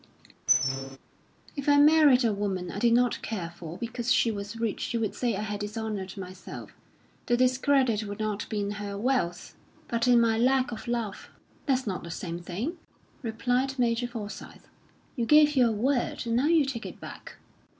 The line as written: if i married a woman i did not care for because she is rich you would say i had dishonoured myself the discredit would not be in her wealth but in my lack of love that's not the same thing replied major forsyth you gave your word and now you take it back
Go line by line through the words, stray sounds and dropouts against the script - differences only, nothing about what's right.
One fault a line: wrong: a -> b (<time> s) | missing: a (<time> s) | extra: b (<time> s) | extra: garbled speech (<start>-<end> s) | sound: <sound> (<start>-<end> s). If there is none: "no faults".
sound: squeak (0.5-1.0 s)
wrong: is -> was (4.3 s)